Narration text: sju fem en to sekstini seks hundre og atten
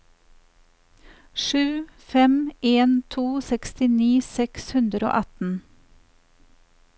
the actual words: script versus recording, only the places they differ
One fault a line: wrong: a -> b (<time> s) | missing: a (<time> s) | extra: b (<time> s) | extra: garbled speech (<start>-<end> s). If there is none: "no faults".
no faults